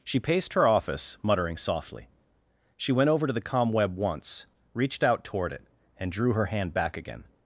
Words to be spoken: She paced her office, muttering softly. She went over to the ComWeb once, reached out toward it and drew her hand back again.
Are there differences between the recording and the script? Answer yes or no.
no